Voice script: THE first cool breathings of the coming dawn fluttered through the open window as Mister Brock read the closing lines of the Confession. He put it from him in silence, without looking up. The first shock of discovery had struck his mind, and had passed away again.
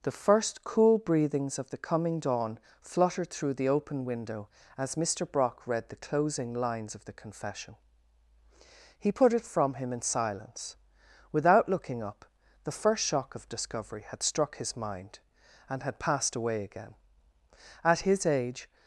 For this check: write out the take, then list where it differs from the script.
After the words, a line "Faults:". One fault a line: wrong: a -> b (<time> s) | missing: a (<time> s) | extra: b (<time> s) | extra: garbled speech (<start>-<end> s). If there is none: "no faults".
THE first cool breathings of the coming dawn fluttered through the open window as Mister Brock read the closing lines of the Confession. He put it from him in silence, without looking up. The first shock of discovery had struck his mind, and had passed away again. At his age
Faults:
extra: At his age (17.8 s)